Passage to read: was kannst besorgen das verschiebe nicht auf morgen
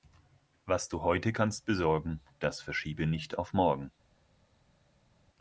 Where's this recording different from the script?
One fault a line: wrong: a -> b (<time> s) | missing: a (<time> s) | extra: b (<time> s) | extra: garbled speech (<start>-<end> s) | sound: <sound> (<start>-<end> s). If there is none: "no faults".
extra: du heute (0.9 s)